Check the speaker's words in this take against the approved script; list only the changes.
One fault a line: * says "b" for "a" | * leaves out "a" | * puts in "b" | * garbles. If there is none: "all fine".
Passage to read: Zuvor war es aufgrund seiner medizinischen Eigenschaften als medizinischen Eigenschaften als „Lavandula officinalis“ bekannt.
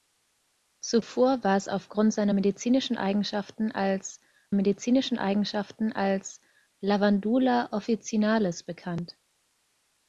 all fine